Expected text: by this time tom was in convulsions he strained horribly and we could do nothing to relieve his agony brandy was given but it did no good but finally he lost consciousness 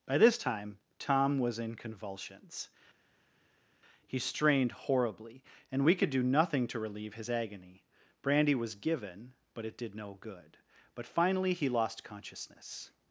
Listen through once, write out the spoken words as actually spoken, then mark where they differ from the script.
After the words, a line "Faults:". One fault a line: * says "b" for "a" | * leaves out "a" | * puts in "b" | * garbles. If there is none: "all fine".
by this time tom was in convulsions he strained horribly and we could do nothing to relieve his agony brandy was given but it did no good but finally he lost consciousness
Faults:
all fine